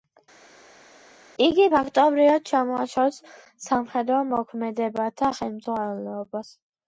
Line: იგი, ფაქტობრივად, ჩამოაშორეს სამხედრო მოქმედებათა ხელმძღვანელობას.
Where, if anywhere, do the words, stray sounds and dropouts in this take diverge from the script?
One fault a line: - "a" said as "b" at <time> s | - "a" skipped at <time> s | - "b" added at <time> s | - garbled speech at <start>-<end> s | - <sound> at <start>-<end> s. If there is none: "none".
none